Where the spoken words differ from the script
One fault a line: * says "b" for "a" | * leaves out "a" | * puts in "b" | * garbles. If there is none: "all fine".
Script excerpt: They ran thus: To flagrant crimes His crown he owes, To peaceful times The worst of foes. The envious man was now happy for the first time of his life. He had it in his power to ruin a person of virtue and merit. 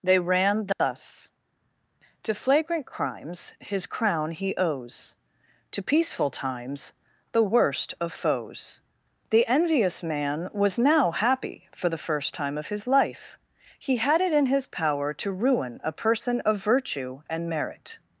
all fine